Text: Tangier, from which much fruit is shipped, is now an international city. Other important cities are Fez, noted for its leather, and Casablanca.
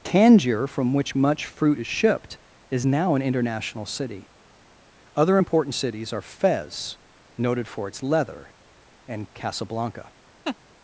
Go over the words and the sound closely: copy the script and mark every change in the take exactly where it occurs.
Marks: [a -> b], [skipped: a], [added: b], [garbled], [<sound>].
Tangier, from which much fruit is shipped, is now an international city. Other important cities are Fez, noted for its leather, and Casablanca. [laugh]